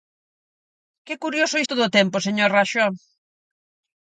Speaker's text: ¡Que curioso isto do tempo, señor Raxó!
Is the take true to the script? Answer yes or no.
yes